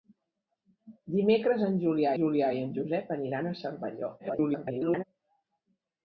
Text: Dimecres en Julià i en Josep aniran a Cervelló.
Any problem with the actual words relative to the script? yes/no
yes